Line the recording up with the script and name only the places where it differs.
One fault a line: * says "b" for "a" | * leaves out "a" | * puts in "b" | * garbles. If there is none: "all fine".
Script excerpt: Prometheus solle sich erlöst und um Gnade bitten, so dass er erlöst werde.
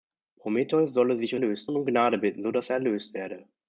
all fine